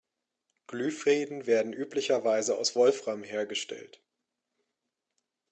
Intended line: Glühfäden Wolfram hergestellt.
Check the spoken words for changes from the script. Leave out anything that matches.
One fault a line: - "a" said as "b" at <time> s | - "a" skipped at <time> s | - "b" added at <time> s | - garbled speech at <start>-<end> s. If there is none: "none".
- "werden üblicherweise aus" added at 1.4 s